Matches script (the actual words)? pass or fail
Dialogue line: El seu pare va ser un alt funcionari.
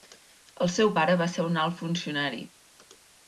pass